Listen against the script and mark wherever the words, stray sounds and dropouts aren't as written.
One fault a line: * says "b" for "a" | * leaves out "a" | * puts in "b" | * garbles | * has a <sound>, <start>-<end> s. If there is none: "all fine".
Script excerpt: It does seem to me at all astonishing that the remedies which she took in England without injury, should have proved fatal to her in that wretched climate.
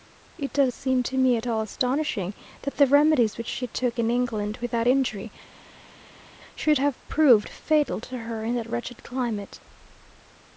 all fine